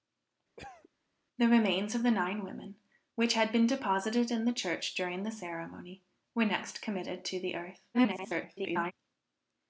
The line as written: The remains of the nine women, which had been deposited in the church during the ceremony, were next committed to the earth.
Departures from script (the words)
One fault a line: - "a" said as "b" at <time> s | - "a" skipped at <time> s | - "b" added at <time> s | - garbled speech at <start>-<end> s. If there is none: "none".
- garbled speech at 7.9-8.9 s